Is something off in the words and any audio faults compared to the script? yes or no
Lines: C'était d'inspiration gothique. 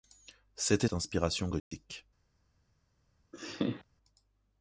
yes